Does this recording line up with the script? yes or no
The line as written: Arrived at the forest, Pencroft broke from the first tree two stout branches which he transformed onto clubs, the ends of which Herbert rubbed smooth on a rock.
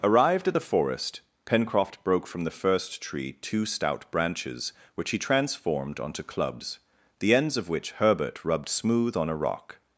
yes